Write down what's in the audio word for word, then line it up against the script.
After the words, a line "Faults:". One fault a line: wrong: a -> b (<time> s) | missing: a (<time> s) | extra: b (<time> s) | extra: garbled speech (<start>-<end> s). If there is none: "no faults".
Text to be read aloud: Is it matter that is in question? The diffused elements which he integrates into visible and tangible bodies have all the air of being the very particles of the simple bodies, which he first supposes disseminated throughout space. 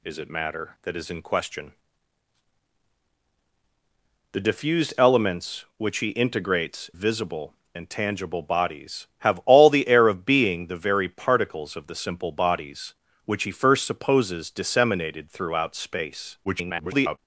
Is it matter that is in question? The diffused elements which he integrates visible and tangible bodies have all the air of being the very particles of the simple bodies, which he first supposes disseminated throughout space. [garbled]
Faults:
missing: into (6.9 s)
extra: garbled speech (16.4-17.2 s)